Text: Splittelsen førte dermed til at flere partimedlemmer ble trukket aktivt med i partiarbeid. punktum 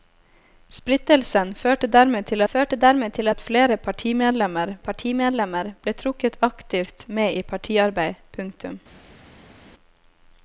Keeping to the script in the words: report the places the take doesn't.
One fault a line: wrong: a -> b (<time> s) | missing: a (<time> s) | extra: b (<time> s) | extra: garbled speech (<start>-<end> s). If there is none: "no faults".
extra: førte dermed til (2.5 s)
extra: partimedlemmer (4.9 s)